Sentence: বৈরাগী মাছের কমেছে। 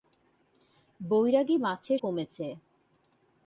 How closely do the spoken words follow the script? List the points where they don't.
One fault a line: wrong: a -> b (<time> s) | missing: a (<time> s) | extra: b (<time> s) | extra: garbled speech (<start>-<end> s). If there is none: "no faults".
no faults